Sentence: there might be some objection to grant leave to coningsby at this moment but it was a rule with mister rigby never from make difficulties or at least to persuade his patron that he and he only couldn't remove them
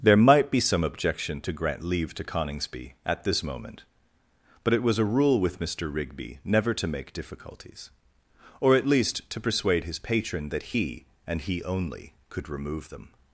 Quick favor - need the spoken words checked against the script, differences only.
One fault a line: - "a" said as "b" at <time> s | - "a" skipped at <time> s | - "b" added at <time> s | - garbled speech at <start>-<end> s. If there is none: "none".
- "from" said as "to" at 6.7 s
- "couldn't" said as "could" at 12.3 s